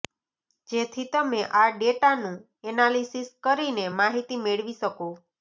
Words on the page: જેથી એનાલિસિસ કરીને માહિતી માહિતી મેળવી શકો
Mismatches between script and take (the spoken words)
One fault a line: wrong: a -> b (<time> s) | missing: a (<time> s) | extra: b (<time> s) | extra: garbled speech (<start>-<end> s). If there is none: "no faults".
extra: તમે આ ડેટાનું (1.1 s)
missing: માહિતી (4.4 s)